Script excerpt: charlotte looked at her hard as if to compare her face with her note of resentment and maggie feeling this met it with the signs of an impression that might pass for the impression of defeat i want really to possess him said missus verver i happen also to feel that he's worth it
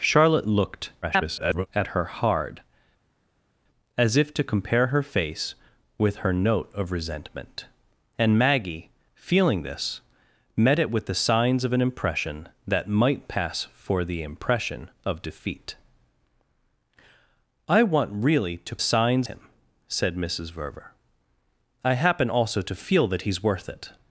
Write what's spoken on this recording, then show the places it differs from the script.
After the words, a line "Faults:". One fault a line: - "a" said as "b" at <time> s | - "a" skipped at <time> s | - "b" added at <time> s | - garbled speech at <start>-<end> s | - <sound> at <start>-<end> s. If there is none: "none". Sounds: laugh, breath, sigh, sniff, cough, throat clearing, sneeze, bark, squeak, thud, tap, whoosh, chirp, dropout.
charlotte looked [garbled] at her hard as if to compare her face with her note of resentment and maggie feeling this met it with the signs of an impression that might pass for the impression of defeat i want really to signs him said missus verver i happen also to feel that he's worth it
Faults:
- garbled speech at 1.0-1.7 s
- "possess" said as "signs" at 18.8 s